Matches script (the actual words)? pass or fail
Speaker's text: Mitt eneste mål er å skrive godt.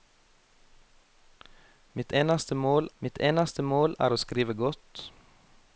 fail